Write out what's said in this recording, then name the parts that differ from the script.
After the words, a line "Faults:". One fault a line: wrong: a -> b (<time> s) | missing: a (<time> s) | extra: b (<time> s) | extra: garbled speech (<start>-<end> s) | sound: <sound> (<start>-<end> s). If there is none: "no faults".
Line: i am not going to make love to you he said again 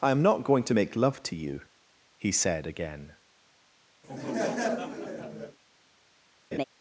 i am not going to make love to you he said again
Faults:
sound: laugh (4.0-5.6 s)
sound: laugh (6.5-6.6 s)